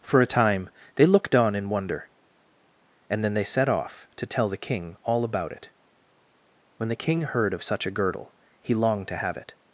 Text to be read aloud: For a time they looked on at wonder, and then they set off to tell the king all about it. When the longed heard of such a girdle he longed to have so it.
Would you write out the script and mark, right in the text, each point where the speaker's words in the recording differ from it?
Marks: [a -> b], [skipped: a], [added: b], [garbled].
For a time they looked on [at -> in] wonder, and then they set off to tell the king all about it. When the [longed -> king] heard of such a girdle he longed to have [skipped: so] it.